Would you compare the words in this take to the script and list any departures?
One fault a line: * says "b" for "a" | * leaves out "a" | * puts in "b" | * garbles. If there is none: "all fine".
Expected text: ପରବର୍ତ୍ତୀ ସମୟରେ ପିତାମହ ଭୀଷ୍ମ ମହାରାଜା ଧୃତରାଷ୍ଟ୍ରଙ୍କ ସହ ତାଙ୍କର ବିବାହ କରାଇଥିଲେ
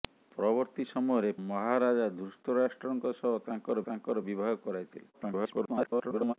* leaves out "ପିତାମହ ଭୀଷ୍ମ"
* puts in "ତାଙ୍କର"
* garbles